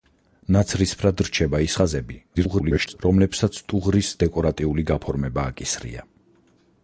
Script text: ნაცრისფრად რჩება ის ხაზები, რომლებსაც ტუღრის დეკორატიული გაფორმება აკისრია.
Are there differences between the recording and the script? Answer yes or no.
yes